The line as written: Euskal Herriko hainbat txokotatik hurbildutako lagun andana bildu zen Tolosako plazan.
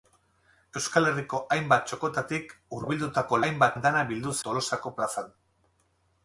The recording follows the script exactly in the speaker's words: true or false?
false